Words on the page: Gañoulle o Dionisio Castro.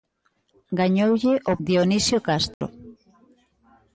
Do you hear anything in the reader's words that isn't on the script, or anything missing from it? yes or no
no